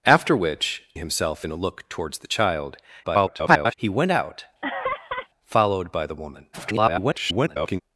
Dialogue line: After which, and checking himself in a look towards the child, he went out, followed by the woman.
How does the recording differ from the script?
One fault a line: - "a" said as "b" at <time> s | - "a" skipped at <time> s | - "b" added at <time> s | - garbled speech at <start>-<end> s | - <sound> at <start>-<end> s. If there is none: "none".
- "and checking" skipped at 0.8 s
- garbled speech at 3.0-3.7 s
- laugh at 4.6-5.3 s
- garbled speech at 6.5-7.8 s